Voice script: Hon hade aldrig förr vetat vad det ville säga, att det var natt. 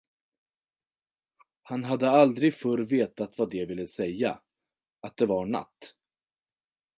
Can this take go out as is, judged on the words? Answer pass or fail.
fail